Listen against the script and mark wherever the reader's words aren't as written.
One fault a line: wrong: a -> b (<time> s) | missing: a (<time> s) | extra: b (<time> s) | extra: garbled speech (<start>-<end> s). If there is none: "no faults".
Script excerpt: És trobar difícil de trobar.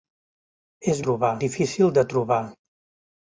no faults